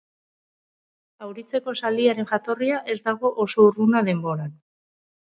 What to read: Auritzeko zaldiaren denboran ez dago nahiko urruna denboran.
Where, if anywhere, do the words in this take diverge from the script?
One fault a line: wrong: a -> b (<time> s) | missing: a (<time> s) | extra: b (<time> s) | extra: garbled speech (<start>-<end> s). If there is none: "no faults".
wrong: denboran -> jatorria (2.3 s)
wrong: nahiko -> oso (3.5 s)